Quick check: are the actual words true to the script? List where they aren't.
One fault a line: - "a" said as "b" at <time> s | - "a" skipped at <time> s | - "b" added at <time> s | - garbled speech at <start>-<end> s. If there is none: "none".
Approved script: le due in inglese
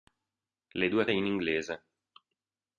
none